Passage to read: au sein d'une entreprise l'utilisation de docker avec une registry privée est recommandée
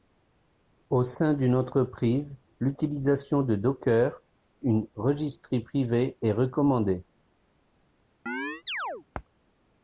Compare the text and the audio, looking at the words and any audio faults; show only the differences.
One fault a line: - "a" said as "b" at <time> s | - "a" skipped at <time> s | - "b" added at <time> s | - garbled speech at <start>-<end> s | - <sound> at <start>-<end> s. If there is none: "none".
- "avec" skipped at 4.2 s
- chirp at 8.3-9.0 s